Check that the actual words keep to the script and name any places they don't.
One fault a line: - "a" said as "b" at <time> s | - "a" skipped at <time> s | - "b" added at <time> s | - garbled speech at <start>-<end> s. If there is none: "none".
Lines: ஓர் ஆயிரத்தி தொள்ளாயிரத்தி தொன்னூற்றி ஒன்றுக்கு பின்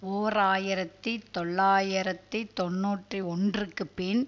none